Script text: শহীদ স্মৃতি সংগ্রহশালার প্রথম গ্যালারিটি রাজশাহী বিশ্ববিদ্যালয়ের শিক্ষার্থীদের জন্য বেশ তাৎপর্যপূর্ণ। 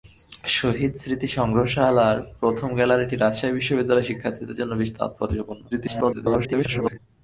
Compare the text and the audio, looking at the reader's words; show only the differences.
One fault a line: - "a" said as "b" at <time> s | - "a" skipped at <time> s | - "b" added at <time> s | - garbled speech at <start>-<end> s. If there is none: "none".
- garbled speech at 5.7-7.0 s